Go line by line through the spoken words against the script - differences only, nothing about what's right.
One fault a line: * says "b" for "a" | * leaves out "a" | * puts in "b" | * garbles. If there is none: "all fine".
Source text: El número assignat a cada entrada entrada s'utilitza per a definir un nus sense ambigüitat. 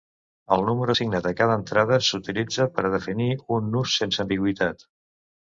* leaves out "entrada"